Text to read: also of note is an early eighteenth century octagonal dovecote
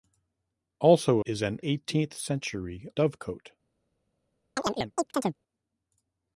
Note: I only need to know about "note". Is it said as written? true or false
false